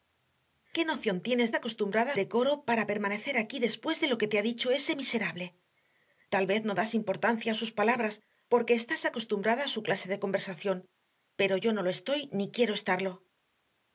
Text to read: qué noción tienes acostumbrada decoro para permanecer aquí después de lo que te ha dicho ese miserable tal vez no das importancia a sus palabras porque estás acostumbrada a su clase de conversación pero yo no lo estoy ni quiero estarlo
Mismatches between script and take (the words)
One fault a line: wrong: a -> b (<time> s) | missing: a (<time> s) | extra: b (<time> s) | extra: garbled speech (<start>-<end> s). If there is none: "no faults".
no faults